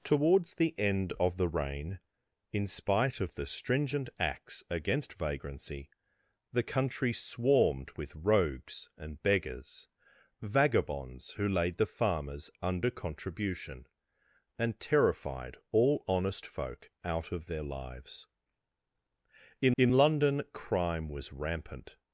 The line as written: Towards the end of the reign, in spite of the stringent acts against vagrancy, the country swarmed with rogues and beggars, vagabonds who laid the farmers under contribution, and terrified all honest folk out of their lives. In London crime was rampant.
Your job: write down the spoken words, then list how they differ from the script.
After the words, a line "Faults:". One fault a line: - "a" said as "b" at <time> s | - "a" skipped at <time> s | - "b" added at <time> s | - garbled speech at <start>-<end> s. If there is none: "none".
Towards the end of the reign, in spite of the stringent acts against vagrancy, the country swarmed with rogues and beggars, vagabonds who laid the farmers under contribution, and terrified all honest folk out of their lives. In in London crime was rampant.
Faults:
- "in" added at 19.8 s